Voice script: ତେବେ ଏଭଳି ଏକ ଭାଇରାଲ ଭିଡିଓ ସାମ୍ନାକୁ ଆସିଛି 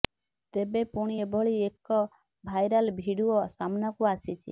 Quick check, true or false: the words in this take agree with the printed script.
false